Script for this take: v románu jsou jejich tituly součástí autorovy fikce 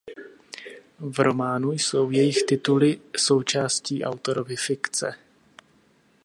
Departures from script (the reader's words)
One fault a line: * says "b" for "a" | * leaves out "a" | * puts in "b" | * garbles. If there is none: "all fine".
all fine